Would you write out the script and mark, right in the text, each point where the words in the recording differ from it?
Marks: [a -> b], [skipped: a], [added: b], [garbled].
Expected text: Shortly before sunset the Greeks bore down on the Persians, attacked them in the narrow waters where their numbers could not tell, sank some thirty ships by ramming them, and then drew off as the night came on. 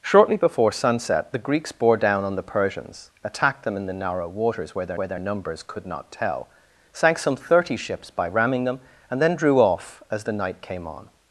Shortly before sunset the Greeks bore down on the Persians, attacked them in the narrow waters where their [added: where their] numbers could not tell, sank some thirty ships by ramming them, and then drew off as the night came on.